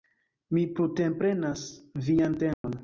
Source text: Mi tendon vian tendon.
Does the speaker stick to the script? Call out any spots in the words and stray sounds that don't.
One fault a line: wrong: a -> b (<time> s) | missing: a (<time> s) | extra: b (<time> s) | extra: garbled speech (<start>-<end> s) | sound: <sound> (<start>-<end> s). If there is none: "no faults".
wrong: tendon -> prunteprenas (0.8 s)
sound: dropout (2.5-2.6 s)